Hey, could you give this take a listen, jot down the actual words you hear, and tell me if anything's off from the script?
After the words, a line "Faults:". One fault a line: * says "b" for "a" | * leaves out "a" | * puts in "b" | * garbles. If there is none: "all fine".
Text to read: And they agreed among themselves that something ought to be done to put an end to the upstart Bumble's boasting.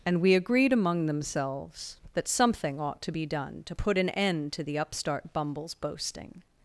And we agreed among themselves that something ought to be done to put an end to the upstart Bumble's boasting.
Faults:
* says "we" for "they"